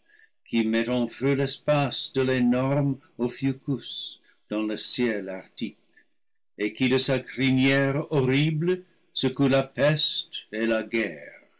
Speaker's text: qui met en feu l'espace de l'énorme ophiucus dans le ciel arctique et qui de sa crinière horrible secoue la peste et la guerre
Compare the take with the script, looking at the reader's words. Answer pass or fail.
pass